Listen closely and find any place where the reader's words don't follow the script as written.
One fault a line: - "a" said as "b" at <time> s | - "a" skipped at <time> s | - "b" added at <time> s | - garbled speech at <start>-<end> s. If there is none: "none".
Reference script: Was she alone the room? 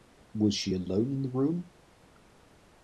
- "in" added at 1.1 s